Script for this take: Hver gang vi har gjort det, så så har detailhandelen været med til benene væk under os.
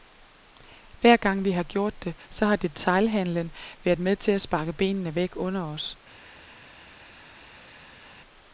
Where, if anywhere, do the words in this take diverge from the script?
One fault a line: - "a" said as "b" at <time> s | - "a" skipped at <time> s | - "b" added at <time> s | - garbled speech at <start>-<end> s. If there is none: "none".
- "så" skipped at 2.5 s
- "at sparke" added at 4.3 s